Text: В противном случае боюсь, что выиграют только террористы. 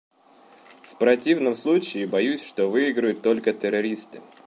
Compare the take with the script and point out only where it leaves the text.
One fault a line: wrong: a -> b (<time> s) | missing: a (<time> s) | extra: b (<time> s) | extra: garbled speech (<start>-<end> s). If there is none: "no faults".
no faults